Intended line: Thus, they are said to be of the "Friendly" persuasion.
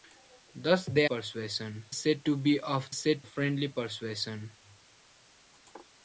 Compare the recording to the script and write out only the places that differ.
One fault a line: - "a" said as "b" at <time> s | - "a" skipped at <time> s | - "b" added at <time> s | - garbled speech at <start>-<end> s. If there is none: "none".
- "are" said as "persuasion" at 1.0 s
- "the" said as "said" at 2.9 s